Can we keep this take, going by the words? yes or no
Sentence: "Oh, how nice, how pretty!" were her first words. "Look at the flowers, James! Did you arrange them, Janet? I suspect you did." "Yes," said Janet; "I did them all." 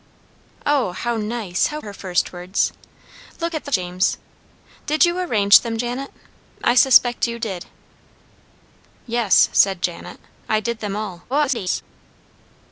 no